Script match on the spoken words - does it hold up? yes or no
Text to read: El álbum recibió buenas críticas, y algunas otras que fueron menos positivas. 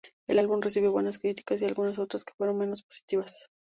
yes